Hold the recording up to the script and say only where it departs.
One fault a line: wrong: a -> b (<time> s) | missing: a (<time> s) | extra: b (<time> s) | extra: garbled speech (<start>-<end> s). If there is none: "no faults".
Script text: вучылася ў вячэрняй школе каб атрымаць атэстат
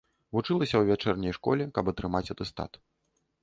no faults